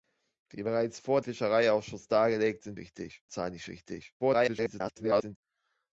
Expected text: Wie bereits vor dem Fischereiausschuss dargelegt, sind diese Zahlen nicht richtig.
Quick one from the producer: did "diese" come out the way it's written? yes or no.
no